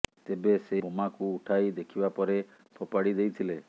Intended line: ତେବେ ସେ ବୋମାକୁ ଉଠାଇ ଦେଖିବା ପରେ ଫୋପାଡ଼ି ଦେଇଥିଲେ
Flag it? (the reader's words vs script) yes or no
no